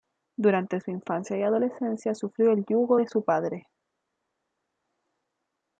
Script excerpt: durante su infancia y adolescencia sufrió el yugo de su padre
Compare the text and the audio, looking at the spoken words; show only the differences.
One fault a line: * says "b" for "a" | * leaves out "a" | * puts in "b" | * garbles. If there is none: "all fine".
all fine